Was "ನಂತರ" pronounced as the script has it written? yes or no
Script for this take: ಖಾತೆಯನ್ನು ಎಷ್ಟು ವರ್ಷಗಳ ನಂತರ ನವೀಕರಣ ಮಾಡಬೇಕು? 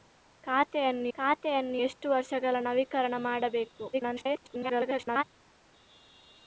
no